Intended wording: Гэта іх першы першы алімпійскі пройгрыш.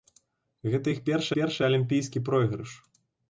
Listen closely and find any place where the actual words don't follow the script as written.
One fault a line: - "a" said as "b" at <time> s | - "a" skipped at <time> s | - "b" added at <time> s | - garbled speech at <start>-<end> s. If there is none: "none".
none